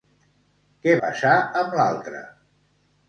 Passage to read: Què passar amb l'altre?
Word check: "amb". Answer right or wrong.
right